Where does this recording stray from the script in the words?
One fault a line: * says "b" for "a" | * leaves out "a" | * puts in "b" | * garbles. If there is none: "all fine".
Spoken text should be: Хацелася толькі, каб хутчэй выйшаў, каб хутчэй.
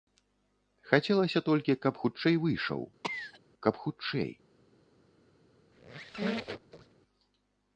all fine